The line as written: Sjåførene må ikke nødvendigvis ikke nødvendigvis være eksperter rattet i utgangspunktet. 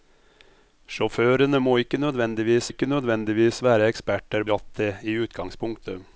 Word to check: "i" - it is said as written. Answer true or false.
true